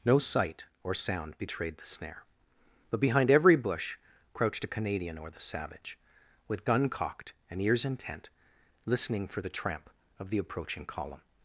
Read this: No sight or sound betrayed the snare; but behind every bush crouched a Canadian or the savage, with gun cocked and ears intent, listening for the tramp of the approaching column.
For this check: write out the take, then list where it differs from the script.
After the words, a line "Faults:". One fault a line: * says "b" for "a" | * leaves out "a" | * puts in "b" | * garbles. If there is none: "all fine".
No sight or sound betrayed the snare; but behind every bush crouched a Canadian or the savage, with gun cocked and ears intent, listening for the tramp of the approaching column.
Faults:
all fine